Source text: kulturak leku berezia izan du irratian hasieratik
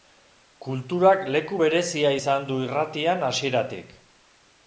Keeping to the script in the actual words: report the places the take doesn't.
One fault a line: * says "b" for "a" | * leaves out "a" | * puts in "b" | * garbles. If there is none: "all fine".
all fine